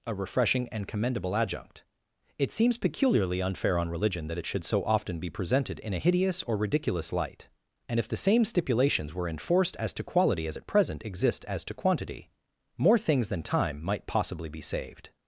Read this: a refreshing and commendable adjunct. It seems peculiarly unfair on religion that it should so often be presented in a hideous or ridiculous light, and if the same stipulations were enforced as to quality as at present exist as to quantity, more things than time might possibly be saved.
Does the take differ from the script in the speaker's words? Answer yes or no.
no